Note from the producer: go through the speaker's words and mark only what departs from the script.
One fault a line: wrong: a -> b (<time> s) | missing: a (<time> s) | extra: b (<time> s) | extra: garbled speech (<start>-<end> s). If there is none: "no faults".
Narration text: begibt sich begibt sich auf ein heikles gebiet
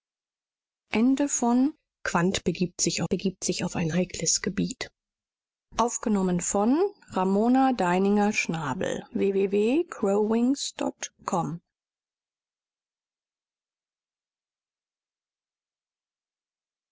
no faults